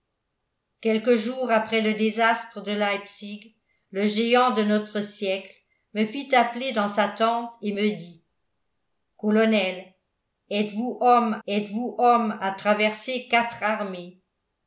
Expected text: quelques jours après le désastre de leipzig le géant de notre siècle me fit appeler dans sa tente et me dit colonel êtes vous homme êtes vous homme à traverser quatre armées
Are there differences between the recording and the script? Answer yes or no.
no